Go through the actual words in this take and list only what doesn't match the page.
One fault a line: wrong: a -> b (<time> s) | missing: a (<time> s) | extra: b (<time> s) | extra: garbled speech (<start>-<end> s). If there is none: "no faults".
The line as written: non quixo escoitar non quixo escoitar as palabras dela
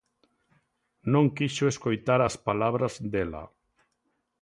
missing: non quixo escoitar (2.2 s)